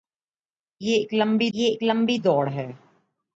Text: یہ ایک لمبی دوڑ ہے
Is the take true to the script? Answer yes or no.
no